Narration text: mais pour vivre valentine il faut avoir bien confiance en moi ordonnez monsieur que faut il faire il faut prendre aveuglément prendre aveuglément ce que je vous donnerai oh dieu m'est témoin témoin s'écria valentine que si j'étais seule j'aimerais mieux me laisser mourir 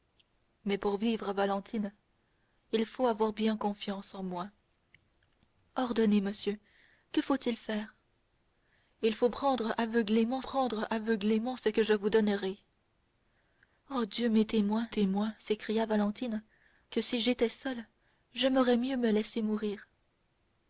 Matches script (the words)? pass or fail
pass